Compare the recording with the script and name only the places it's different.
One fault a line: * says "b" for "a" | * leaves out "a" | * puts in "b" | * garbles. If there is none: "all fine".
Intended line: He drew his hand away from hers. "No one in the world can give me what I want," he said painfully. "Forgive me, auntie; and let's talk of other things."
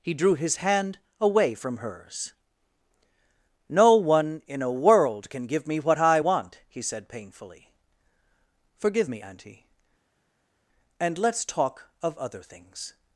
* says "a" for "the"